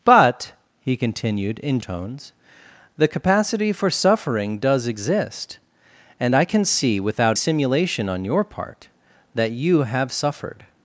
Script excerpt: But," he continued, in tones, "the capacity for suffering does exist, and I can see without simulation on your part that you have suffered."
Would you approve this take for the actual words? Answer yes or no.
yes